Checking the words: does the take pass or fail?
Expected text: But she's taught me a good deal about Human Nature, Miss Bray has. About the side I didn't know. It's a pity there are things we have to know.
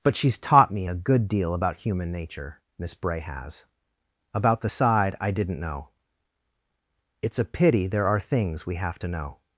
pass